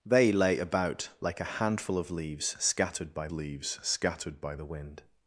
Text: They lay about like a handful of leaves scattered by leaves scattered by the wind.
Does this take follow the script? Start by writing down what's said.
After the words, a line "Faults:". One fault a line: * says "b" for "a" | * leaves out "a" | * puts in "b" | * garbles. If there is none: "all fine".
They lay about like a handful of leaves scattered by leaves scattered by the wind.
Faults:
all fine